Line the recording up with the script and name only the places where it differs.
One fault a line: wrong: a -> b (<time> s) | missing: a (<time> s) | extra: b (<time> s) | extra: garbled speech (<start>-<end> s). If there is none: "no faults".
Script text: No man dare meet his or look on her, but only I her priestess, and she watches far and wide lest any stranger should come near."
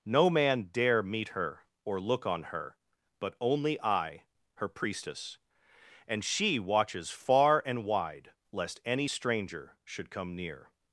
wrong: his -> her (1.3 s)